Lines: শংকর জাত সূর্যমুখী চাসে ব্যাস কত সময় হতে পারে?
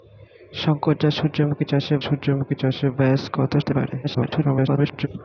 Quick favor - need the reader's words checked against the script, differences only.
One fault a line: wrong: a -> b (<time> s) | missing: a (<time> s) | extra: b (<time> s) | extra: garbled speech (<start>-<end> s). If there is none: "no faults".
extra: সূর্যমুখী চাসে (2.0 s)
missing: সময় (3.5 s)
extra: garbled speech (4.0-5.1 s)